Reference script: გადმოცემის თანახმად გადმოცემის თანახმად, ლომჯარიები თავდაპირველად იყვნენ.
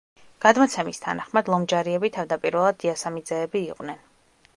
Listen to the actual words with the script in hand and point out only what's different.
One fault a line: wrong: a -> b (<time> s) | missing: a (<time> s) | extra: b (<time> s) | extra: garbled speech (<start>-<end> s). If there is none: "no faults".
missing: გადმოცემის თანახმად (1.5 s)
extra: დიასამიძეები (2.9 s)